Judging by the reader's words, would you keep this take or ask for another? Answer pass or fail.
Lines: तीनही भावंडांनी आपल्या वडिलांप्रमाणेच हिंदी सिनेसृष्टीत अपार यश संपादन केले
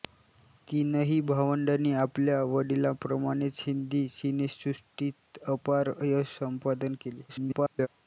fail